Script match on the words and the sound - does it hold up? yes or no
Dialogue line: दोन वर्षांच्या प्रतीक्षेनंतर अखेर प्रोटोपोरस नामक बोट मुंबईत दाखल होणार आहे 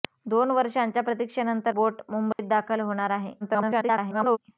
no